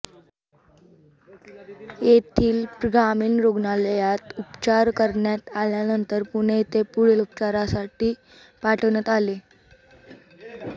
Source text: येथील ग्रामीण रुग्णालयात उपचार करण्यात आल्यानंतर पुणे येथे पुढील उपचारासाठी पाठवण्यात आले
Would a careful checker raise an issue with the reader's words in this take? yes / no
no